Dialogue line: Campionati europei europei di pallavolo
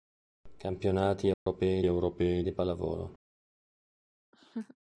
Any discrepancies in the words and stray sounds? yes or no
yes